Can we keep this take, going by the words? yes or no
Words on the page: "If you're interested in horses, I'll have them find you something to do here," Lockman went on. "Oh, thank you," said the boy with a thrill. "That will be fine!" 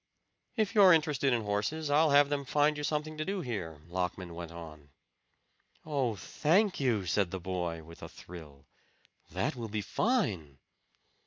yes